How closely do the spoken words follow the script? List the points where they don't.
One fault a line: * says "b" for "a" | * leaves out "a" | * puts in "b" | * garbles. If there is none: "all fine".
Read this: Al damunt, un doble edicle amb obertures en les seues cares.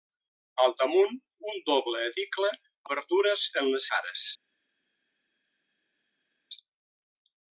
* leaves out "amb"
* leaves out "seues"